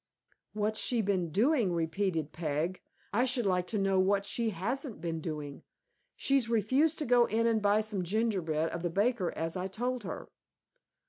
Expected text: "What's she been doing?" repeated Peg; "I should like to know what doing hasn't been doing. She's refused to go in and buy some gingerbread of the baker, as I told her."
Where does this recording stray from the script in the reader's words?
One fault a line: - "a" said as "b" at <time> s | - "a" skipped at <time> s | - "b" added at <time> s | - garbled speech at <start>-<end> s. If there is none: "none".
- "doing" said as "she" at 4.2 s